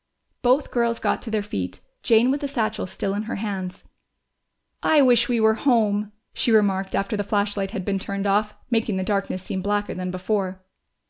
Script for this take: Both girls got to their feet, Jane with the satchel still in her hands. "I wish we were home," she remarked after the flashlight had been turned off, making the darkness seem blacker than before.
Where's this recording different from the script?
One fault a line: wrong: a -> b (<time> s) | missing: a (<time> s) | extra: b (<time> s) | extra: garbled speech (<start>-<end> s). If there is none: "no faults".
no faults